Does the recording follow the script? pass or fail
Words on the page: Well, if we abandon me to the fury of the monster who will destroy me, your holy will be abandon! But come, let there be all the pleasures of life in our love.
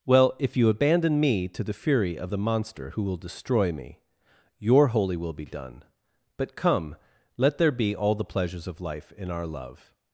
fail